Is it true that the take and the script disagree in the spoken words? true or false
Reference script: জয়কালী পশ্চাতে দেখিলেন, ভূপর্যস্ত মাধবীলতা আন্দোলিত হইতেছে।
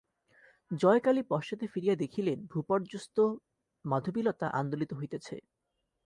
true